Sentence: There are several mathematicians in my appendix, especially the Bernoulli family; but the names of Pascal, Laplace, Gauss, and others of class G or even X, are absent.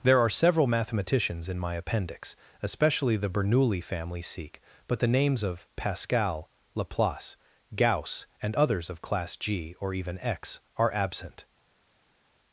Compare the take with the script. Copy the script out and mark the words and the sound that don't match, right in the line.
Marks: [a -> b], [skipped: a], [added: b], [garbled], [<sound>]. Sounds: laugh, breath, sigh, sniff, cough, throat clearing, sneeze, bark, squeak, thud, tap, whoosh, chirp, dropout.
There are several mathematicians in my appendix, especially the Bernoulli family; [added: sikh] but the names of Pascal, Laplace, Gauss, and others of class G or even X, are absent.